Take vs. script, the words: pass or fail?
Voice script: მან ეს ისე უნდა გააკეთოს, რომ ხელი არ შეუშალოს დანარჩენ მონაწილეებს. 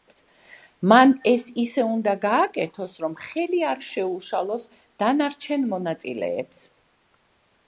pass